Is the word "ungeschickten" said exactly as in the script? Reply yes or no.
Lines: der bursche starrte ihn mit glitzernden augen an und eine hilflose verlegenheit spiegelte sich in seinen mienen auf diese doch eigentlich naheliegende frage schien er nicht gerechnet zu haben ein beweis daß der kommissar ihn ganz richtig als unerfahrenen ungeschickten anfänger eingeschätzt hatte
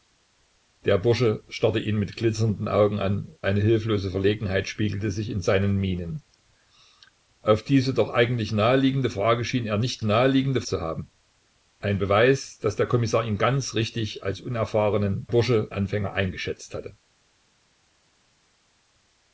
no